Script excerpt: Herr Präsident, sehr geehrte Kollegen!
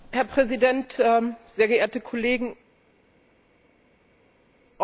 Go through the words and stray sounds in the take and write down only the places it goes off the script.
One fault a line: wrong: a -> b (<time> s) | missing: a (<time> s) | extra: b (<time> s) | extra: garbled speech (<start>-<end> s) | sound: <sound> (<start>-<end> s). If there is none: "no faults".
no faults